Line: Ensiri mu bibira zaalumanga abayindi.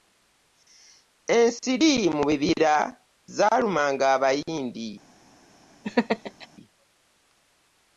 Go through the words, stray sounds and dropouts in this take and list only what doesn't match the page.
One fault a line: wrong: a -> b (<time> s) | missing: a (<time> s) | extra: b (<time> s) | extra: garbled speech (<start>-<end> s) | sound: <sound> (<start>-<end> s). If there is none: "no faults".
sound: laugh (5.8-6.5 s)